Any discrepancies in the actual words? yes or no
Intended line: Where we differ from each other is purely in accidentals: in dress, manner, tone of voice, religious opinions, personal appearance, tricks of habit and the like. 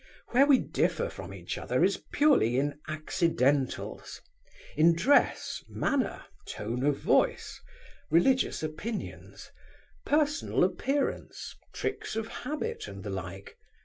no